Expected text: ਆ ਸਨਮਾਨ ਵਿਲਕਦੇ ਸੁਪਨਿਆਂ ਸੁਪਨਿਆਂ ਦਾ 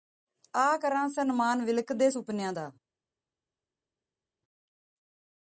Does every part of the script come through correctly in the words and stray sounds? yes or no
no